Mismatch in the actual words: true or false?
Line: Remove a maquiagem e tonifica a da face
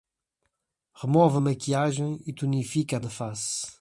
false